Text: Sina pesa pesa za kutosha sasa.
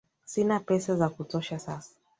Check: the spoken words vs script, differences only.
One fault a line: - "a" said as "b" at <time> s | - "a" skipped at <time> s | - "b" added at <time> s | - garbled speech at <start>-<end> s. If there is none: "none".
- "pesa" skipped at 1.0 s